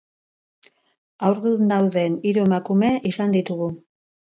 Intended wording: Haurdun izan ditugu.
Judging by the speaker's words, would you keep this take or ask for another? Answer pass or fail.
fail